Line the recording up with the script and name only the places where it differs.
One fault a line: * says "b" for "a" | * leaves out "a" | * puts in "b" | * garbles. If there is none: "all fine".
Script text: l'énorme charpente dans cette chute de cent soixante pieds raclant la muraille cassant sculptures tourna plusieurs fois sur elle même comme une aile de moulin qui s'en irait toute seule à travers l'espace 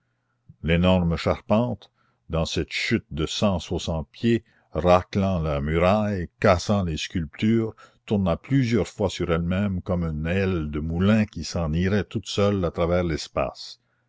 * puts in "les"